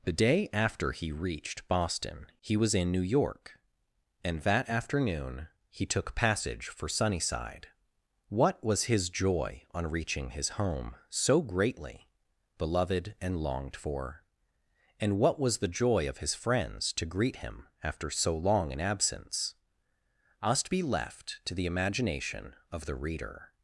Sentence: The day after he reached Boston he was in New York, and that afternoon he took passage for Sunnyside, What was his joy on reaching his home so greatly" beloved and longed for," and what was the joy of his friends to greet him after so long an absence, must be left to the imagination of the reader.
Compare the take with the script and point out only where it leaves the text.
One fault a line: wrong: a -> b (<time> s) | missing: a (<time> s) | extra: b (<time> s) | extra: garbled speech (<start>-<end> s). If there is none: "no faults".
no faults